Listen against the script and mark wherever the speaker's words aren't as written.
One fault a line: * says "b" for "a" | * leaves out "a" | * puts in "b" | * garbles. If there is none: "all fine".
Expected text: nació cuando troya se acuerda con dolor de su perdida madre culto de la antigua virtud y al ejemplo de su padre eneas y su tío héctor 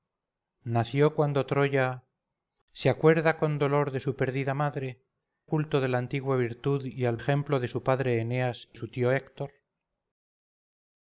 all fine